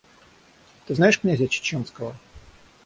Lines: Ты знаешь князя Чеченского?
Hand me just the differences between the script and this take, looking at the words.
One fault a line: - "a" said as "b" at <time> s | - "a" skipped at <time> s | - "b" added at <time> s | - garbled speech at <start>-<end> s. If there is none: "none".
none